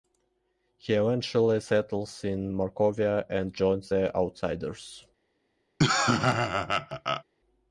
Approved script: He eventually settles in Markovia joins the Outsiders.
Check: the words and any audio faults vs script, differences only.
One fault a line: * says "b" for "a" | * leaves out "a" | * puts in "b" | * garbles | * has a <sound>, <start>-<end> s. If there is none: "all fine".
* puts in "and"
* has a laugh, 5.8-7.2 s